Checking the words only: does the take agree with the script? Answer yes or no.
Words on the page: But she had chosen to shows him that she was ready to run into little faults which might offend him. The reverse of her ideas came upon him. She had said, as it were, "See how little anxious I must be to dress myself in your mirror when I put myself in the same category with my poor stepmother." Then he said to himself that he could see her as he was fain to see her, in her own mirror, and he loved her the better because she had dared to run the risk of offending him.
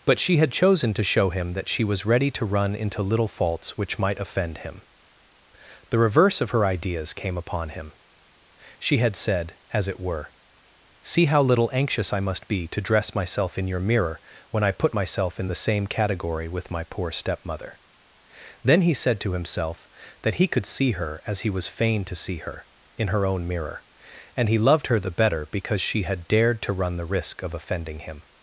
no